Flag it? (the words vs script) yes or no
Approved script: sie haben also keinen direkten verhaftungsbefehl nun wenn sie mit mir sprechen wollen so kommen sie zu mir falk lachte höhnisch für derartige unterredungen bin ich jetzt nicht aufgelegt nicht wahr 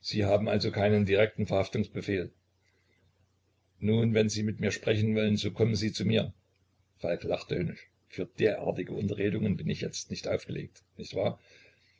no